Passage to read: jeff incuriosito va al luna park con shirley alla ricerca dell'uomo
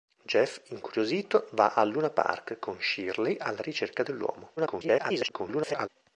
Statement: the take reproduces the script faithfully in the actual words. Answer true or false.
false